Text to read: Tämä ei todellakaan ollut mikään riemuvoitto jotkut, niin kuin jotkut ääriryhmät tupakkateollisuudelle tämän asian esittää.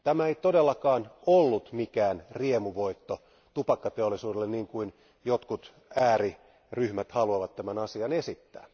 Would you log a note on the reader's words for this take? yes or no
yes